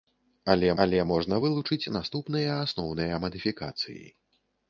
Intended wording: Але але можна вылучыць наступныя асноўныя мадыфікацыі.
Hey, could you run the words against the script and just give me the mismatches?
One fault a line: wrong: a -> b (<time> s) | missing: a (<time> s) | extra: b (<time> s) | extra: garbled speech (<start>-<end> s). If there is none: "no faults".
no faults